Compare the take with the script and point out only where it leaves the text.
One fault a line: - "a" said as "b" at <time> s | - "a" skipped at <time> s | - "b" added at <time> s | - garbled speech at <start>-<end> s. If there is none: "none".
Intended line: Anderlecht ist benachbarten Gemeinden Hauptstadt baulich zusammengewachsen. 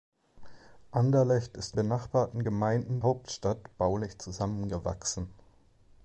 none